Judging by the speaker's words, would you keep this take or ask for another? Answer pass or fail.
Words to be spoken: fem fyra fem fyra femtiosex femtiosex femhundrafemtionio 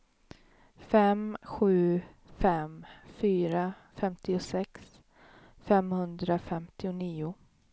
fail